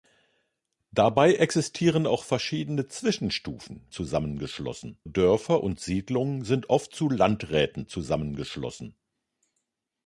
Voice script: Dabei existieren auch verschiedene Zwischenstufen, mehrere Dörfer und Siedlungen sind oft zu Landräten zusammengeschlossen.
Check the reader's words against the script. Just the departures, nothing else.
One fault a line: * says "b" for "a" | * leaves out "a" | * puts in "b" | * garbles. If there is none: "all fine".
* says "zusammengeschlossen" for "mehrere"